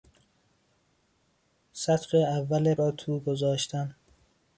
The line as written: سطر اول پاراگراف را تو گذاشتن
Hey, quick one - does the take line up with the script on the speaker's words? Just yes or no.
no